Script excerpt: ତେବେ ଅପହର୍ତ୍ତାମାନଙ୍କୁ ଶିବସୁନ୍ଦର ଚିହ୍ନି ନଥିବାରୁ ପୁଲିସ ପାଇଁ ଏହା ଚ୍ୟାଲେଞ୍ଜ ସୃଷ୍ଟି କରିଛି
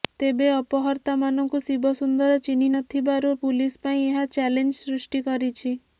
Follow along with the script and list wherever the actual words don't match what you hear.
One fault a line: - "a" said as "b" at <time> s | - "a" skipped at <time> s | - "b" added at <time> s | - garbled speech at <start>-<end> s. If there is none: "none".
none